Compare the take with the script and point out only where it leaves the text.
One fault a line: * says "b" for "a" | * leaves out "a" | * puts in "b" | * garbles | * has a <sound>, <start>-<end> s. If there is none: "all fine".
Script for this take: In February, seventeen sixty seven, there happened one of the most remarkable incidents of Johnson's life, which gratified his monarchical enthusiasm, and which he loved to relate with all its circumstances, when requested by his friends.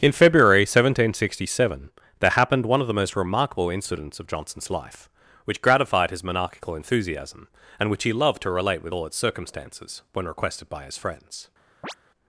* has a chirp, 11.8-11.9 s